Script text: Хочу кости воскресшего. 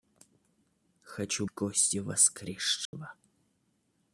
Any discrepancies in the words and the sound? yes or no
yes